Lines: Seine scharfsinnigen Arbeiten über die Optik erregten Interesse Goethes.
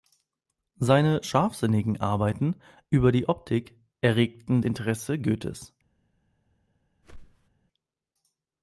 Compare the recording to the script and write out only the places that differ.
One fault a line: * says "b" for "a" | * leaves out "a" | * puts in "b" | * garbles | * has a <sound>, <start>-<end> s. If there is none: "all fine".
* has a whoosh, 7.0-7.5 s